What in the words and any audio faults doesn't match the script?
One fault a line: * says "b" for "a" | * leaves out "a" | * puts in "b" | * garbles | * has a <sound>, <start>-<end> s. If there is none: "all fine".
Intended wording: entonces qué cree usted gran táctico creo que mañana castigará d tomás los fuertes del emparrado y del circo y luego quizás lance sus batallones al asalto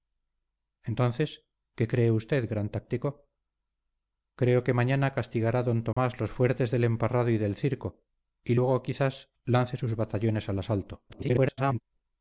* has a dropout, 5.9-6.0 s
* garbles